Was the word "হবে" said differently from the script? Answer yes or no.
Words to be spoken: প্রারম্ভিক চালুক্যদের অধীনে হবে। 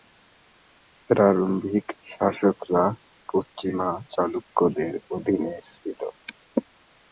yes